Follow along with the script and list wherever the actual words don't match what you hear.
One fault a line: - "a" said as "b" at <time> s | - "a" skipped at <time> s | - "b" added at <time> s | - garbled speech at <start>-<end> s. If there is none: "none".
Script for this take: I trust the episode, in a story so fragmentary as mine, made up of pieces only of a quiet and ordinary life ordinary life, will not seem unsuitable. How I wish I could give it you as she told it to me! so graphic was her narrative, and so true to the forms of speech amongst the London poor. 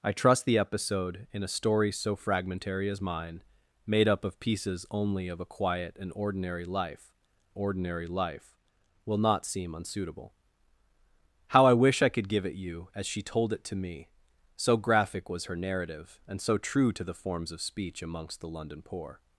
none